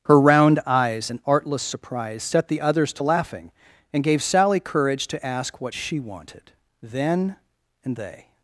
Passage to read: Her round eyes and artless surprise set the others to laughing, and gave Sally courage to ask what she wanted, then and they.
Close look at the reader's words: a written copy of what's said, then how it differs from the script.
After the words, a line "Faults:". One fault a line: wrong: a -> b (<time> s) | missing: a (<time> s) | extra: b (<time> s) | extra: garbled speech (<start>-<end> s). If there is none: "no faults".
Her round eyes and artless surprise set the others to laughing, and gave Sally courage to ask what she wanted, then and they.
Faults:
no faults